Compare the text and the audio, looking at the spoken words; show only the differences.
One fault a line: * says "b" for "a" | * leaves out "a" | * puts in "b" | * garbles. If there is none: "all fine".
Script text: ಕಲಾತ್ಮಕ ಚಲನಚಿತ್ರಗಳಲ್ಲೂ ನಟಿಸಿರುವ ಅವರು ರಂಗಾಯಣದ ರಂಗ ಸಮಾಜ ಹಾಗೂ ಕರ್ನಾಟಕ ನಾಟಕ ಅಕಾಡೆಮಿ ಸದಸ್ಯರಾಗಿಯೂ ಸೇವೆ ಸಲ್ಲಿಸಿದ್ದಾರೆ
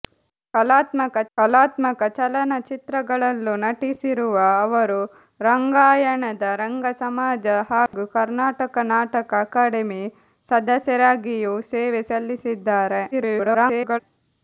* puts in "ಕಲಾತ್ಮಕ"
* garbles